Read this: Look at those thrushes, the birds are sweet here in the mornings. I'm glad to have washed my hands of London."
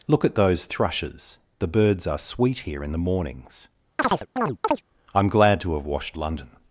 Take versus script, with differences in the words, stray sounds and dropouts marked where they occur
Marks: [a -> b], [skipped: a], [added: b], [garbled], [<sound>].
Look at those thrushes, the birds are sweet here in the mornings. [chirp] I'm glad to have washed [skipped: my hands of] London."